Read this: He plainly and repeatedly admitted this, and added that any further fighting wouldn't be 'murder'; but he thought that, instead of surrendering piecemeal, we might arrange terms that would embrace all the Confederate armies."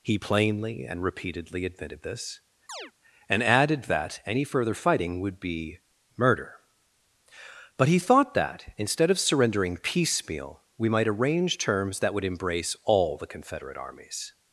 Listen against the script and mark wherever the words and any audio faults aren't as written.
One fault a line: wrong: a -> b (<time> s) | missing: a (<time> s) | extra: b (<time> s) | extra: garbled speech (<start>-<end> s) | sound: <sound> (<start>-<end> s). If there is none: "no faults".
sound: chirp (2.7-2.9 s)
wrong: wouldn't -> would (5.2 s)